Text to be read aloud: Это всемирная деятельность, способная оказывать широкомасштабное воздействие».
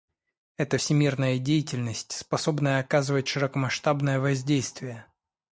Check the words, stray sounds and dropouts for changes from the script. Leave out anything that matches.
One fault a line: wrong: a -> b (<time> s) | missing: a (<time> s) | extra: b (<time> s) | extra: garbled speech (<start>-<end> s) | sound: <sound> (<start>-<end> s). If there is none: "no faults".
no faults